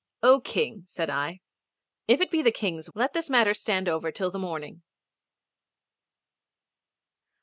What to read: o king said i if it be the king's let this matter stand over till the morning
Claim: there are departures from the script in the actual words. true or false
false